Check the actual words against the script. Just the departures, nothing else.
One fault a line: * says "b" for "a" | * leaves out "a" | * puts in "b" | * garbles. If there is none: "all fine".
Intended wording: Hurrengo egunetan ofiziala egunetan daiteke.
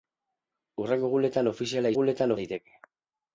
all fine